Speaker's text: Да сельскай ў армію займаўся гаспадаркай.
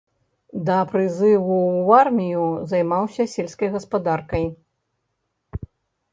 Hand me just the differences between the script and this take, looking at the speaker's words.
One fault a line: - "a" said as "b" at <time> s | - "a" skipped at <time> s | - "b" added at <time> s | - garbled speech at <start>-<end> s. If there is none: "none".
- "сельскай" said as "прызыву" at 0.9 s
- "сельскай" added at 3.3 s